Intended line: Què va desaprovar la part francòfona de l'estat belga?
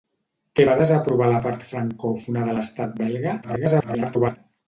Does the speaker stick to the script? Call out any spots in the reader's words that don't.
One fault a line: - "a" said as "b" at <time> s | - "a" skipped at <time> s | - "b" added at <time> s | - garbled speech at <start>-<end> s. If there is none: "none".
- garbled speech at 3.4-4.4 s